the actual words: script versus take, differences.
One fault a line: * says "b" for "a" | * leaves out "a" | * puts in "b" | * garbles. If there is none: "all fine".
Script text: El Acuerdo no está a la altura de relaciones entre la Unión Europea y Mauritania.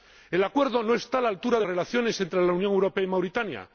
all fine